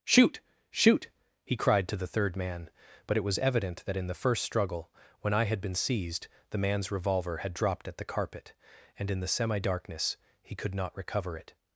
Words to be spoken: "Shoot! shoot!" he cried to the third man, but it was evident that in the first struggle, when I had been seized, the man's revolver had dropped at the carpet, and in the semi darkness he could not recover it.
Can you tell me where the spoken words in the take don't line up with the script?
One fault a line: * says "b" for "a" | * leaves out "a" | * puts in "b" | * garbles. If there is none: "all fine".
all fine